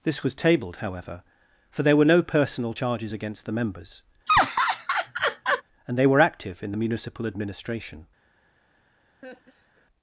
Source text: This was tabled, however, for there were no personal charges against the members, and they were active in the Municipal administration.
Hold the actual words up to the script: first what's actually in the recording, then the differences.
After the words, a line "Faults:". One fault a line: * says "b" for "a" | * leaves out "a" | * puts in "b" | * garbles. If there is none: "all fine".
This was tabled, however, for there were no personal charges against the members, and they were active in the Municipal administration.
Faults:
all fine